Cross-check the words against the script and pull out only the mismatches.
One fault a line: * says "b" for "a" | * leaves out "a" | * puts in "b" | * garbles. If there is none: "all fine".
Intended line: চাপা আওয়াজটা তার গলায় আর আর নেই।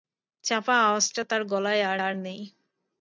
all fine